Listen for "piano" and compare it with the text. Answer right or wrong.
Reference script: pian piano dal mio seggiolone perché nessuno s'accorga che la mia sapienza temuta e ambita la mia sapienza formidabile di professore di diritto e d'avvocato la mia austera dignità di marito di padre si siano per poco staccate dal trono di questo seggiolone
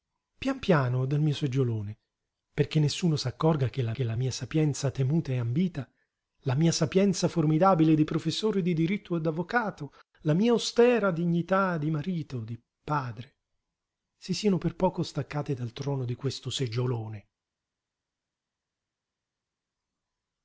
right